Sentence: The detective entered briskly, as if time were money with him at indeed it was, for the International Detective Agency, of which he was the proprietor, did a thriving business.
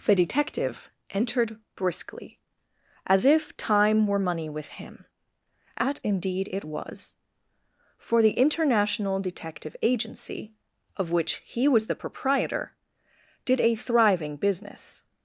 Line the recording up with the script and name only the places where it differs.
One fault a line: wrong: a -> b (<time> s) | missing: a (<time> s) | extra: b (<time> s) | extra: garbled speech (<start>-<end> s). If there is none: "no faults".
no faults